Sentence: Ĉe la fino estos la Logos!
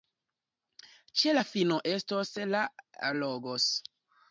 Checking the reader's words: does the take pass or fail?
pass